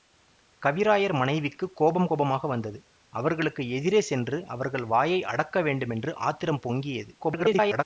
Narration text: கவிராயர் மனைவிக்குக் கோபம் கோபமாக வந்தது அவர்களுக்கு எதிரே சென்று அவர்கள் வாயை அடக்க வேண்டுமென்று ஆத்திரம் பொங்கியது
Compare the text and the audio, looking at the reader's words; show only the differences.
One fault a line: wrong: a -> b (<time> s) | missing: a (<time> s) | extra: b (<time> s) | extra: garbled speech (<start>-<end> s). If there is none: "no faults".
extra: garbled speech (7.2-7.8 s)